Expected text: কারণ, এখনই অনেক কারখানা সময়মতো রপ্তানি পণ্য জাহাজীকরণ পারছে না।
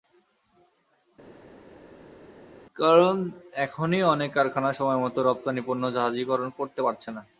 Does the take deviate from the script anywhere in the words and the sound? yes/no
yes